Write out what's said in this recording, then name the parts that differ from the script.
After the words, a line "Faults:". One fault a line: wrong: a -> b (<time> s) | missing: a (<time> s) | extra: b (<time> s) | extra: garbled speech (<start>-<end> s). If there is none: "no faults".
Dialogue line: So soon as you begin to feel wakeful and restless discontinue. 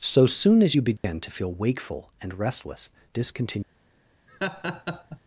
So soon as you begin to feel wakeful and restless discontinue.
Faults:
no faults